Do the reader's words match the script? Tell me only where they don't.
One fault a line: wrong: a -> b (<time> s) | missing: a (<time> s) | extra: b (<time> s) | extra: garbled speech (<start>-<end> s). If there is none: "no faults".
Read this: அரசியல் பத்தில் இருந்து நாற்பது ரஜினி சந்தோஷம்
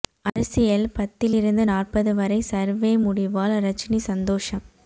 extra: வரை சர்வே முடிவால் (2.1 s)